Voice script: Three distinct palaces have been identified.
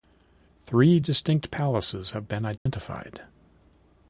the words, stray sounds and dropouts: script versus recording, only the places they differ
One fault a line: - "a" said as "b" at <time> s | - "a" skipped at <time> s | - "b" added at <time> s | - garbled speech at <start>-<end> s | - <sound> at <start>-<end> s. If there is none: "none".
- dropout at 2.6-2.7 s